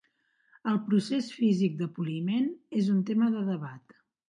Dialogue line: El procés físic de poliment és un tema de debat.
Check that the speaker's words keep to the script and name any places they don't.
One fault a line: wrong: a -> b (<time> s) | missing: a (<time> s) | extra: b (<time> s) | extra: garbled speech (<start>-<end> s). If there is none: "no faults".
no faults